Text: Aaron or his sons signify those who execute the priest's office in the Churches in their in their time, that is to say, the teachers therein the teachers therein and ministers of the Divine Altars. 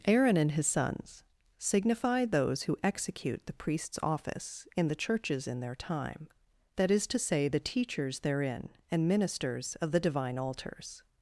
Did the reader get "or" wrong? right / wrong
wrong